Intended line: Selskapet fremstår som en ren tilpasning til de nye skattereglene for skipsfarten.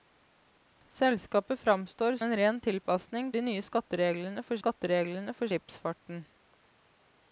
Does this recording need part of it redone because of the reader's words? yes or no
yes